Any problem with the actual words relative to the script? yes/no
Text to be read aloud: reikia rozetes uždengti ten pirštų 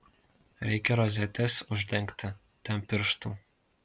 no